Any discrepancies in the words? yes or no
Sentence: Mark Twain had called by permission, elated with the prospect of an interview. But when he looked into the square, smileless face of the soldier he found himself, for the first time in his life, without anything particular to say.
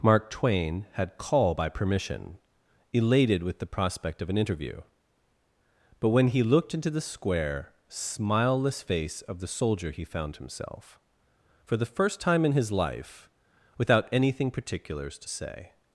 yes